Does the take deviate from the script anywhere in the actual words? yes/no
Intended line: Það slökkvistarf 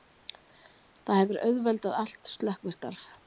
yes